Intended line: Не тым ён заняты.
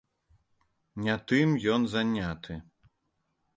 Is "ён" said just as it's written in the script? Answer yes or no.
yes